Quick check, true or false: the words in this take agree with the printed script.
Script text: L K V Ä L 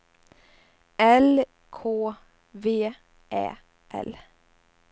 true